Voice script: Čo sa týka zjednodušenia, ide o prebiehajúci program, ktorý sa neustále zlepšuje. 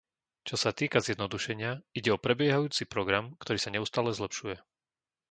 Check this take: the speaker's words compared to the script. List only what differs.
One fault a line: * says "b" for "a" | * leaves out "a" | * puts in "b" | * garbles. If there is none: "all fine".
all fine